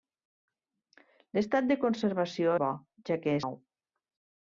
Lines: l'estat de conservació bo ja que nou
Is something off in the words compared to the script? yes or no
no